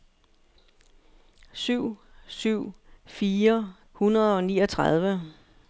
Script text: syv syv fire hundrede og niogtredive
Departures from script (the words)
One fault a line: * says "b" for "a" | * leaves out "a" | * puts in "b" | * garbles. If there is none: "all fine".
all fine